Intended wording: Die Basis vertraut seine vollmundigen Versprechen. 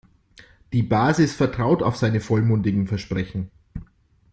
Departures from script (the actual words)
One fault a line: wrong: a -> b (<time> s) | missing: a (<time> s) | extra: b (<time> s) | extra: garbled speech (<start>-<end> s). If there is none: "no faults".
extra: auf (1.8 s)